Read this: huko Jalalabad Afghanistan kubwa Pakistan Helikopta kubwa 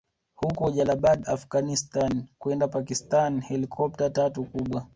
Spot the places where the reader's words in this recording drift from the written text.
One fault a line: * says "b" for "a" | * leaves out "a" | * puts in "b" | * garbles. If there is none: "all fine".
* says "kwenda" for "kubwa"
* puts in "tatu"